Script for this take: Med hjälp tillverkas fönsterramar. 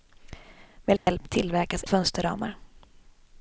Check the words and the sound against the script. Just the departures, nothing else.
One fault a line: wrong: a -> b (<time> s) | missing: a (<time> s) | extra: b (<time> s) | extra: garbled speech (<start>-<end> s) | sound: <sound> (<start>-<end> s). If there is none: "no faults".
sound: dropout (1.0-1.1 s)